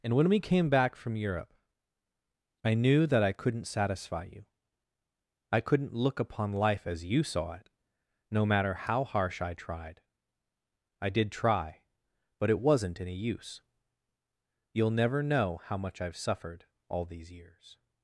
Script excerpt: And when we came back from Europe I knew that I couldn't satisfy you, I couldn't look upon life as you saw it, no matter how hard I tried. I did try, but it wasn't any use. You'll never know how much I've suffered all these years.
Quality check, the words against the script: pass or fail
fail